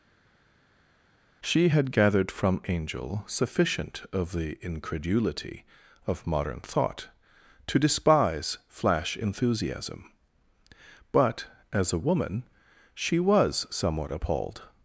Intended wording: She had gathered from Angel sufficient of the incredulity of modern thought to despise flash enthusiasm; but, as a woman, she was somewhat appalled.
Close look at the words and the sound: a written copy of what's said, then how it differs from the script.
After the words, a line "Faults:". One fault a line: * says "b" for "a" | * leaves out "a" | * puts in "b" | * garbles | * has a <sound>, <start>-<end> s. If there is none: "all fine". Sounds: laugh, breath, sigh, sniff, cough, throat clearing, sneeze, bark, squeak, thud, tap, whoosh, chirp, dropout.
She had gathered from Angel sufficient of the incredulity of modern thought to despise flash enthusiasm; but, as a woman, she was somewhat appalled.
Faults:
all fine